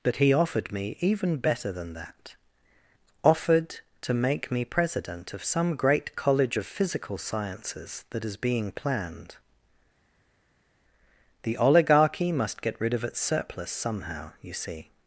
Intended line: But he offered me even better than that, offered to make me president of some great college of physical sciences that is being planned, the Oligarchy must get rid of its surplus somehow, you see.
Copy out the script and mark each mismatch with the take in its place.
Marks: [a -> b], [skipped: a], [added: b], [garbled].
But he offered me even better than that, offered to make me president of some great college of physical sciences that is being planned, the Oligarchy must get rid of its surplus somehow, you see.